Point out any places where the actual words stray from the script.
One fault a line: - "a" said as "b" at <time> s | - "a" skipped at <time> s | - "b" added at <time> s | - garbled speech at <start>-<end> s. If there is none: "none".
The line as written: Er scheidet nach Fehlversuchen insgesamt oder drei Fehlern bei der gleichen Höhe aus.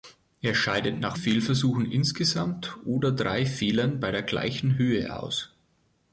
none